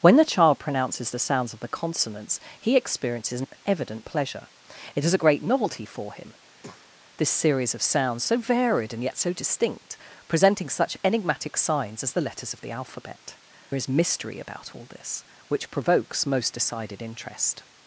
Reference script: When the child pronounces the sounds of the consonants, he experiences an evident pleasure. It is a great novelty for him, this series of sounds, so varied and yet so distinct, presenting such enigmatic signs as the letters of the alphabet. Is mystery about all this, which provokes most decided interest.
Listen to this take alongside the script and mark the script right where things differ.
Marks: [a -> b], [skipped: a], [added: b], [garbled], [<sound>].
When the child pronounces the sounds of the consonants, he experiences an evident pleasure. It is a great novelty for him, [breath] this series of sounds, so varied and yet so distinct, presenting such enigmatic signs as the letters of the alphabet. Is mystery about all this, which provokes most decided interest.